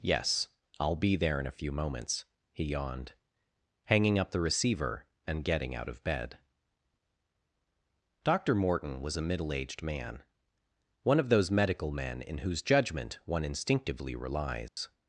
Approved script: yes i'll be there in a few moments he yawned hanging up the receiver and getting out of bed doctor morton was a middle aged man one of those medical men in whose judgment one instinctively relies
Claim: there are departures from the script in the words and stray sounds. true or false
true